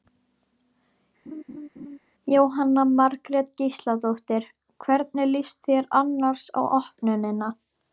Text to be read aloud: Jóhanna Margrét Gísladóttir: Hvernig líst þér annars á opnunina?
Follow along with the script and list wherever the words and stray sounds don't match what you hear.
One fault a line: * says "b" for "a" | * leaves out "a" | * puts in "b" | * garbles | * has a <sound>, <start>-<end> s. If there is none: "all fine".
* has a laugh, 1.3-2.0 s